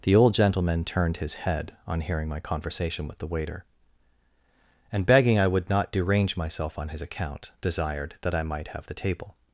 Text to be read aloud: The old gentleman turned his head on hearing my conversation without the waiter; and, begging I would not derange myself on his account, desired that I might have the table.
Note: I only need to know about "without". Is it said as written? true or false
false